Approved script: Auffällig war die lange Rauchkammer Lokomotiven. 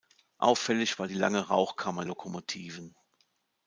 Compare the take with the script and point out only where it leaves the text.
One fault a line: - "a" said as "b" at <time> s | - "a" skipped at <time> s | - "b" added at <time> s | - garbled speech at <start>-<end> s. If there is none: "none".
none